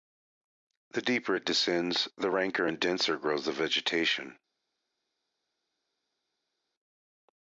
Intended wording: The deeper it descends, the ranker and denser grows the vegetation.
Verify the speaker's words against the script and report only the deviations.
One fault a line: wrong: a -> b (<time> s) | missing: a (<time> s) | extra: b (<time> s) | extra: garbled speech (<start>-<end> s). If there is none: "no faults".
no faults